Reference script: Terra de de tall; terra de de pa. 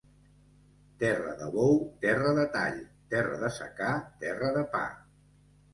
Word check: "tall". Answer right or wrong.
right